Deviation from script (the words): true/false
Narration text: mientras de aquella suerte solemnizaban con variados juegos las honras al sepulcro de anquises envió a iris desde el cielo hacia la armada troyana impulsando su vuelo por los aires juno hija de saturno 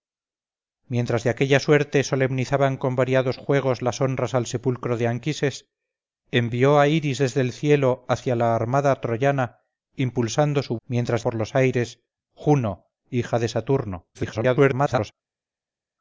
true